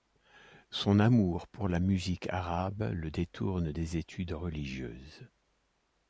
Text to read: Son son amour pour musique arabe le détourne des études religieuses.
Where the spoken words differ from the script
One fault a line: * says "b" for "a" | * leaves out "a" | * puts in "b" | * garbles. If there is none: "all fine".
* leaves out "son"
* puts in "la"